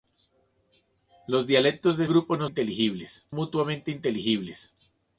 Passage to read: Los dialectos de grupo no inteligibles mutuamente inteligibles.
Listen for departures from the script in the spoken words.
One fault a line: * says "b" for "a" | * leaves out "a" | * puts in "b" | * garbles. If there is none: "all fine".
all fine